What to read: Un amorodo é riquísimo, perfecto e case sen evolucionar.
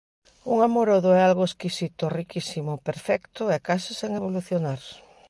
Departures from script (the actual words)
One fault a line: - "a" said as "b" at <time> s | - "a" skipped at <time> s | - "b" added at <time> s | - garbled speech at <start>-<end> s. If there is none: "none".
- "algo exquisito" added at 1.2 s